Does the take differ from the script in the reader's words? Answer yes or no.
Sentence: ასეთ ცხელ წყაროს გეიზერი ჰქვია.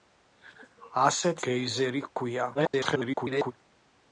yes